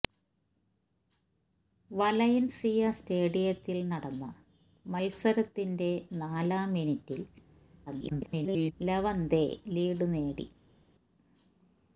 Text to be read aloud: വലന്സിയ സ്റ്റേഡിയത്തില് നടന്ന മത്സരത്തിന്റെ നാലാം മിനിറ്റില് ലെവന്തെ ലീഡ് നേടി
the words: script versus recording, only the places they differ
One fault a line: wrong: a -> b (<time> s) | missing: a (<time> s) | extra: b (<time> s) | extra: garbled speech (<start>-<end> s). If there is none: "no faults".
extra: garbled speech (7.9-8.7 s)